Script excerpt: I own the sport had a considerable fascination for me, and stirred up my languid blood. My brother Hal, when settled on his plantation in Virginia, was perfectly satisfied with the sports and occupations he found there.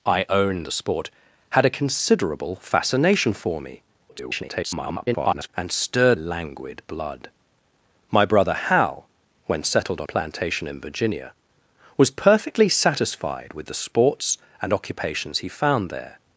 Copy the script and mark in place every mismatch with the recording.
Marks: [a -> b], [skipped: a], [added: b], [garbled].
I own the sport had a considerable fascination for me, [garbled] and stirred [skipped: up my] languid blood. My brother Hal, when settled on [skipped: his] plantation in Virginia, was perfectly satisfied with the sports and occupations he found there.